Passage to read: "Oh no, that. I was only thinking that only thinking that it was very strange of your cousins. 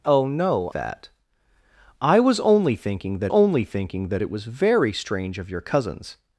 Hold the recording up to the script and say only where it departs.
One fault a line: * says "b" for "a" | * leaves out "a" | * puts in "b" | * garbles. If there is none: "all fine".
all fine